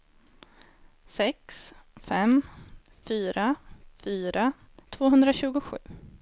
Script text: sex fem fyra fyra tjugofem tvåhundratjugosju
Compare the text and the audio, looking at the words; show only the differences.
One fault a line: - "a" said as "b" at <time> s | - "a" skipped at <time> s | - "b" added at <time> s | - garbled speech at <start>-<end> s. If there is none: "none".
- "tjugofem" skipped at 4.5 s